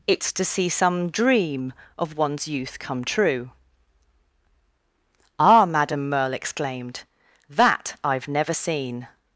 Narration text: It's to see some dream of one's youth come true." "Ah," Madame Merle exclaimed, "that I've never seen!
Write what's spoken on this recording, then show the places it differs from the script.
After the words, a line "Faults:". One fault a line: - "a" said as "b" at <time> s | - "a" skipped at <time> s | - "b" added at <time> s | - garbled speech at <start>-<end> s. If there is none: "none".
It's to see some dream of one's youth come true." "Ah," Madame Merle exclaimed, "that I've never seen!
Faults:
none